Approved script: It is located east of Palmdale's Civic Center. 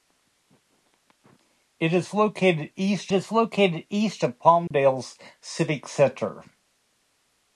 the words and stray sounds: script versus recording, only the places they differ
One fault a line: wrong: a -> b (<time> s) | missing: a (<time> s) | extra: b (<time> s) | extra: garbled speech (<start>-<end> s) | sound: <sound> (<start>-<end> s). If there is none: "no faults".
extra: is located east (3.1 s)
sound: dropout (4.7-4.7 s)